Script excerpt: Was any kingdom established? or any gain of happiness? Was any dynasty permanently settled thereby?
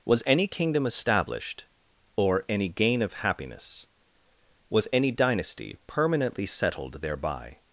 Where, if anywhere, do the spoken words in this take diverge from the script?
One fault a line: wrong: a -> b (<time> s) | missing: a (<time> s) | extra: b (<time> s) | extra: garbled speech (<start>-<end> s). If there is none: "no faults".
no faults